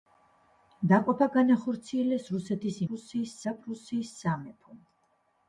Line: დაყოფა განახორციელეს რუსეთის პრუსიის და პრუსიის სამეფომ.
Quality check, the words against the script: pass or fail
pass